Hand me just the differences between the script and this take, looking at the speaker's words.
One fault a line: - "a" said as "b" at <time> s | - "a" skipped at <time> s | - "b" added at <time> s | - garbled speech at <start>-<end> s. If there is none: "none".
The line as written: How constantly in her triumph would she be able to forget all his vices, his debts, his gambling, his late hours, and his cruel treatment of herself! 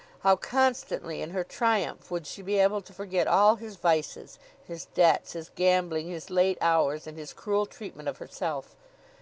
none